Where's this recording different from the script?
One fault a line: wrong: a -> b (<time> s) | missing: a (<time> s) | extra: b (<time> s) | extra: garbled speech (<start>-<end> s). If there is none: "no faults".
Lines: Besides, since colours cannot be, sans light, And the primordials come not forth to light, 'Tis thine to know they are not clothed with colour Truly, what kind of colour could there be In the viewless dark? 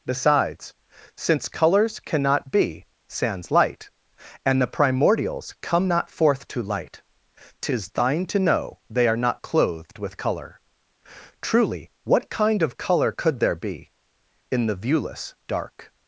no faults